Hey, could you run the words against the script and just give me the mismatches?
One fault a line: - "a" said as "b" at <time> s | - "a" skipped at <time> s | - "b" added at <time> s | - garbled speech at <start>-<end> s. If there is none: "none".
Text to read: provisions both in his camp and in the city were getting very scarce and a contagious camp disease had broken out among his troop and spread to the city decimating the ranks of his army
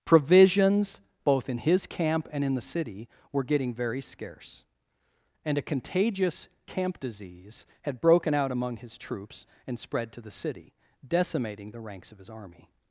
- "troop" said as "troops" at 9.0 s